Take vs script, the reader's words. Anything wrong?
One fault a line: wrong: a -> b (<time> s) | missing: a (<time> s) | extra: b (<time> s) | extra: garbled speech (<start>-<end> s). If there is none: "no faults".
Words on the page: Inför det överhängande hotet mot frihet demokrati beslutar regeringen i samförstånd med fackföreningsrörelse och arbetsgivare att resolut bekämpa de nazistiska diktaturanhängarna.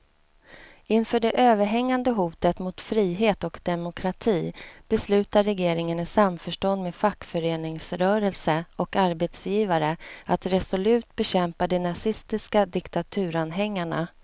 extra: och (3.4 s)